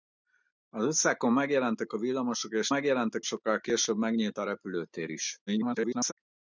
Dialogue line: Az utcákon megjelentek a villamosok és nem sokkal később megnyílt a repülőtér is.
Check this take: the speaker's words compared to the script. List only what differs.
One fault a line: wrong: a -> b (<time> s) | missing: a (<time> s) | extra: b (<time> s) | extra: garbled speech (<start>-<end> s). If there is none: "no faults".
wrong: nem -> megjelentek (2.7 s)
extra: garbled speech (5.5-6.1 s)